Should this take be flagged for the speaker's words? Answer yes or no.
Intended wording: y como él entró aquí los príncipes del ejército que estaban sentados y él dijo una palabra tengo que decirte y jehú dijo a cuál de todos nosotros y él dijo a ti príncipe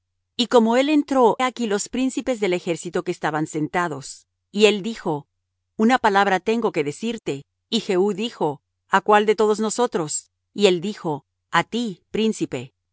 no